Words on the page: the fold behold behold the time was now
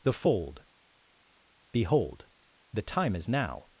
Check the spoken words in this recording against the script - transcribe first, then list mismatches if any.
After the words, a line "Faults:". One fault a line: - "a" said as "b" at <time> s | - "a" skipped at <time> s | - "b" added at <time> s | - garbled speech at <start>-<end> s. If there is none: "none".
the fold behold the time is now
Faults:
- "behold" skipped at 2.2 s
- "was" said as "is" at 3.1 s